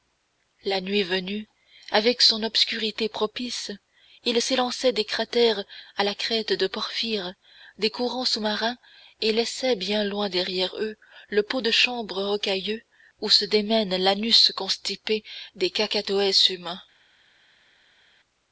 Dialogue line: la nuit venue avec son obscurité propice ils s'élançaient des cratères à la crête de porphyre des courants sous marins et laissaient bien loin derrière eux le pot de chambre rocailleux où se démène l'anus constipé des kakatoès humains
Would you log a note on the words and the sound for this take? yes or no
no